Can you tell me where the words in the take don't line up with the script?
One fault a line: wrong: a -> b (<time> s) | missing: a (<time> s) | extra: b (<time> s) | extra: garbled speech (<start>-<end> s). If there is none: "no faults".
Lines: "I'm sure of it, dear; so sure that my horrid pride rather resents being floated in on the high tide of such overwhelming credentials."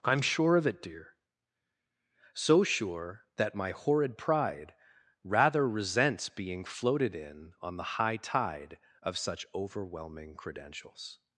no faults